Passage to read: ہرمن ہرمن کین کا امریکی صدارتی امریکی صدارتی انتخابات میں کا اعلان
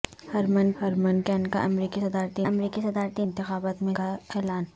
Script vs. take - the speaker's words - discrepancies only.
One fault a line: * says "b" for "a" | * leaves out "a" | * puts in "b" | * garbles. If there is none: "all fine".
all fine